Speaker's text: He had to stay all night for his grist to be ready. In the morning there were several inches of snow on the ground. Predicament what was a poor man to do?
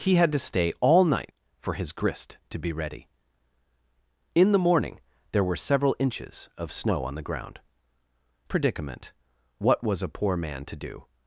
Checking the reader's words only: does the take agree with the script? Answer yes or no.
yes